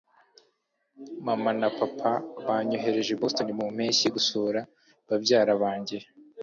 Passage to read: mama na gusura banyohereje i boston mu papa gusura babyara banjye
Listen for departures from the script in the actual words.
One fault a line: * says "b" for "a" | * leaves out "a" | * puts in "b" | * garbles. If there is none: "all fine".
* says "papa" for "gusura"
* says "mpeshyi" for "papa"